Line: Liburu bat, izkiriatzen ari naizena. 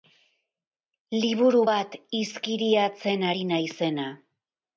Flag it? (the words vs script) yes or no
no